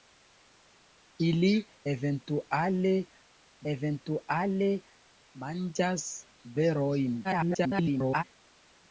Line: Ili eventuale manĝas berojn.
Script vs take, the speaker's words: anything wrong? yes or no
yes